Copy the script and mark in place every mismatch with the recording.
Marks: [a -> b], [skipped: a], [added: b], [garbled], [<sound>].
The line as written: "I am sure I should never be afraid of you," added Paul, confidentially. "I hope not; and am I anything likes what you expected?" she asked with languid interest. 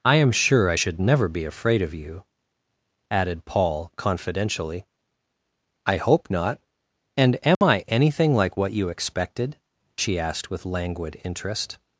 "I am sure I should never be afraid of you," added Paul, confidentially. "I hope not; and am [dropout] I anything [likes -> like] what you expected?" she asked with languid interest.